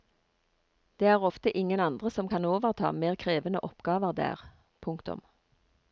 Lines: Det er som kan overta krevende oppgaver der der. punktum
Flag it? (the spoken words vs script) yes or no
yes